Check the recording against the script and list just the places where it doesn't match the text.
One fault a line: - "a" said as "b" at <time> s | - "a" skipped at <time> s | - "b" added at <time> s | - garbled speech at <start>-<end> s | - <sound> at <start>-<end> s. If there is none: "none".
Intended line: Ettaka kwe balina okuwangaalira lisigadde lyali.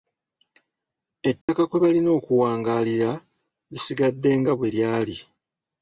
- dropout at 1.4-1.5 s
- "nga bwe" added at 4.4 s